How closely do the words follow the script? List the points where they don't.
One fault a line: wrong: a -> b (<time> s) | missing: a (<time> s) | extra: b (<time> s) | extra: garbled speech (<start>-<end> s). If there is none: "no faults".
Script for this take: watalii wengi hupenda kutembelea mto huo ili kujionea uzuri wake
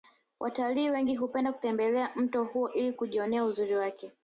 no faults